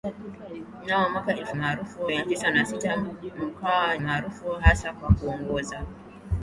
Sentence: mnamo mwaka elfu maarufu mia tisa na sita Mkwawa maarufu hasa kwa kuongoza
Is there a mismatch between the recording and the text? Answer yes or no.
no